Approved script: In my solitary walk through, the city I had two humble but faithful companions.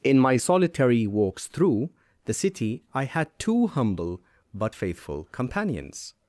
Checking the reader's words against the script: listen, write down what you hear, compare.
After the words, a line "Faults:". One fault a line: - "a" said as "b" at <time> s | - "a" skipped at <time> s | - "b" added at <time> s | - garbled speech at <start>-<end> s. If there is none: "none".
In my solitary walks through, the city I had two humble but faithful companions.
Faults:
- "walk" said as "walks" at 1.1 s